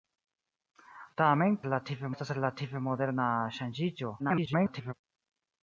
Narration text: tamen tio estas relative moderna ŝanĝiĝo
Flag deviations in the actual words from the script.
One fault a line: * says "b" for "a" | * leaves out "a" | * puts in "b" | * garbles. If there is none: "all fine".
* says "relative" for "tio"
* garbles